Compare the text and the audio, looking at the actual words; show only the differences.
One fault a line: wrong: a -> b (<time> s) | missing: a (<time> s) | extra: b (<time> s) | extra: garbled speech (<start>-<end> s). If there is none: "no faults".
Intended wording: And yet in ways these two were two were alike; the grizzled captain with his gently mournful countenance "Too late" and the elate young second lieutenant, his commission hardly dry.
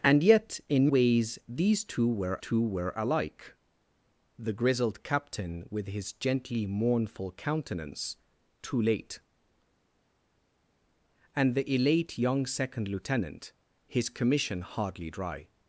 no faults